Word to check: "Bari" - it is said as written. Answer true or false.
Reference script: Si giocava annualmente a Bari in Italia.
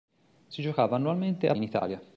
false